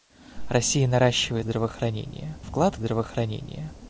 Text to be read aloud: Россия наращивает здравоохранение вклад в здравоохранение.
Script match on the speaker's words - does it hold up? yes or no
yes